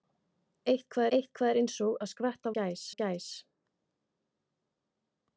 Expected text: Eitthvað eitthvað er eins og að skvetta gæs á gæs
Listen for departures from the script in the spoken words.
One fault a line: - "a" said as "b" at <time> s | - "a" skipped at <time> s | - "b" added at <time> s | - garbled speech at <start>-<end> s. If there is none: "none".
none